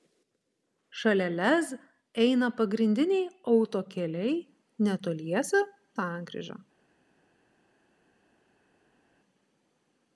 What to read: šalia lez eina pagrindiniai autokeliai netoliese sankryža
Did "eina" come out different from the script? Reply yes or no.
no